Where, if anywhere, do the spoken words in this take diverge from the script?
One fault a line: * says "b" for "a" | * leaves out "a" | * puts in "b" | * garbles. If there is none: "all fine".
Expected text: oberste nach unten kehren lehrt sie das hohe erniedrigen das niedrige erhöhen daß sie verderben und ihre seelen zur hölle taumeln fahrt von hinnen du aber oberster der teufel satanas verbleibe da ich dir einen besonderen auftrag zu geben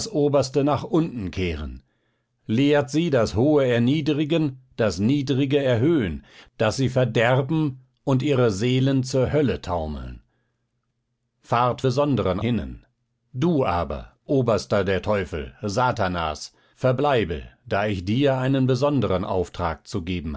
* says "besonderen" for "von"